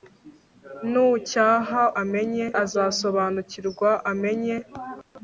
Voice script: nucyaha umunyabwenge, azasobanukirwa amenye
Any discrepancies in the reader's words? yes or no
yes